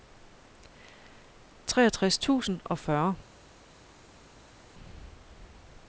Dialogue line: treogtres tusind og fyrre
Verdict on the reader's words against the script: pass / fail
pass